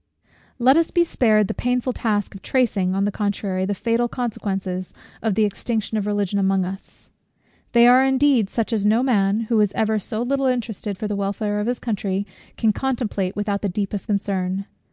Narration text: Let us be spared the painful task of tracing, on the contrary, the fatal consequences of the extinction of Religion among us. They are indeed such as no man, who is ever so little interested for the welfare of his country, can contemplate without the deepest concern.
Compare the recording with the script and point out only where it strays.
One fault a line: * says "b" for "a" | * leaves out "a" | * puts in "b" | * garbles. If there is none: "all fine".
all fine